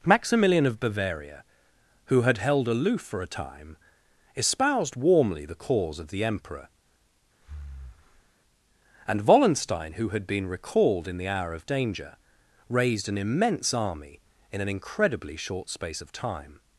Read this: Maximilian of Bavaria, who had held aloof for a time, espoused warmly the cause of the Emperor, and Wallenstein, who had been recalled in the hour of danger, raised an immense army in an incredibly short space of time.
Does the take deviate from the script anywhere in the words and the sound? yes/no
yes